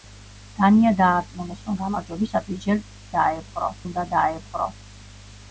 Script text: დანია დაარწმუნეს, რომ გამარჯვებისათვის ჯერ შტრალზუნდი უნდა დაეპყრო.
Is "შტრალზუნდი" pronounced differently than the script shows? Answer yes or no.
yes